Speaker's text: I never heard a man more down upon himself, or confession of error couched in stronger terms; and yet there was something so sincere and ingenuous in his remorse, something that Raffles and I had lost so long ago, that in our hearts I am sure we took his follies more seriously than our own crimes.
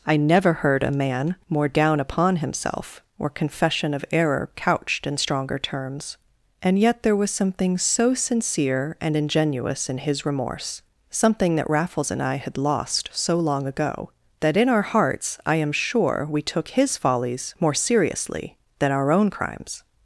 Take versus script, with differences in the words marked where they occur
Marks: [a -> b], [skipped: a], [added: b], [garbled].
I never heard a man more down upon himself, or confession of error couched in stronger terms; and yet there was something so sincere and ingenuous in his remorse, something that Raffles and I had lost so long ago, that in our hearts I am sure we took his follies more seriously than our own crimes.